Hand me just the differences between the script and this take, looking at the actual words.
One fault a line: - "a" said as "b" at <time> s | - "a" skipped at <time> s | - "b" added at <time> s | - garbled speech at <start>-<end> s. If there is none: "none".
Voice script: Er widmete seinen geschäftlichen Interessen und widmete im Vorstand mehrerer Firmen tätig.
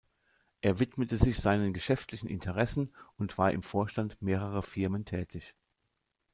- "sich" added at 1.2 s
- "widmete" said as "war" at 3.4 s